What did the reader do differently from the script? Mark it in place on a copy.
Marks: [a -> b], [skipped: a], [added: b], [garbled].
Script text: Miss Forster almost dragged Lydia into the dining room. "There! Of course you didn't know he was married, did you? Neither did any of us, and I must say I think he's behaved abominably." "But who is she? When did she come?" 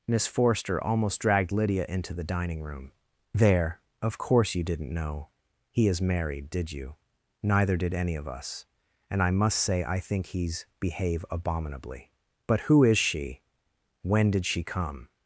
Miss Forster almost dragged Lydia into the dining room. "There! Of course you didn't know he [was -> is] married, did you? Neither did any of us, and I must say I think he's [behaved -> behave] abominably." "But who is she? When did she come?"